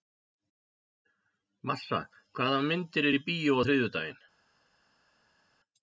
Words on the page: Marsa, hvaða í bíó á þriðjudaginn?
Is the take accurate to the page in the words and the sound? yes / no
no